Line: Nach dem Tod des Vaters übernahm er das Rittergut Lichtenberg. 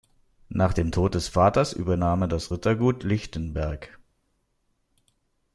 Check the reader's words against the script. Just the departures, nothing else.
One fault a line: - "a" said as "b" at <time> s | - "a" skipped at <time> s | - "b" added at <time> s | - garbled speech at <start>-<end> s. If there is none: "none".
none